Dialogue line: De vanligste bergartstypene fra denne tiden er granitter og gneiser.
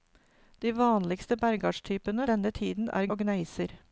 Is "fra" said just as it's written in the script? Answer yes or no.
no